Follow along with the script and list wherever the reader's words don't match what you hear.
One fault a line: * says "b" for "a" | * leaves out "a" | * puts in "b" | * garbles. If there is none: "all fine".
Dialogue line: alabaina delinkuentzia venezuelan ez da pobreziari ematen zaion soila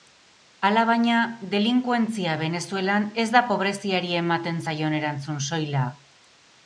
* puts in "erantzun"